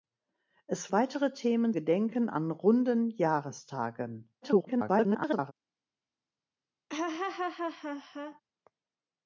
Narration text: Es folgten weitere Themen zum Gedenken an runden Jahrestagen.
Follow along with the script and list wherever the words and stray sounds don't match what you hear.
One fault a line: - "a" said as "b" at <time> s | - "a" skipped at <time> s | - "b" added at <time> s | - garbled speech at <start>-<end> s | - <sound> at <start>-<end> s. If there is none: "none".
- "folgten" skipped at 0.9 s
- "zum" skipped at 1.8 s
- garbled speech at 4.4-5.5 s
- laugh at 6.9-8.4 s